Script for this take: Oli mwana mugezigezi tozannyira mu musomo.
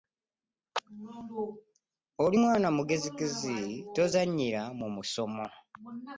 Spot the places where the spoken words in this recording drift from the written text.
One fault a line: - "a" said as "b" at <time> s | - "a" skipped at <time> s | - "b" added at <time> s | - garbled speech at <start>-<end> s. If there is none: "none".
none